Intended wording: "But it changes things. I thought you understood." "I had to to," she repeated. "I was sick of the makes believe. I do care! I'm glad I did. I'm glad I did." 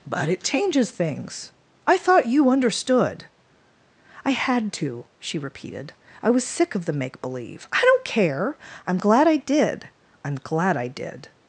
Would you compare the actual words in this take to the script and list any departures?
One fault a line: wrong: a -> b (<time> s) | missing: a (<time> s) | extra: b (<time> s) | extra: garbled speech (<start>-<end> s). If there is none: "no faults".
missing: to (5.0 s)
wrong: makes -> make (6.9 s)
wrong: do -> don't (7.8 s)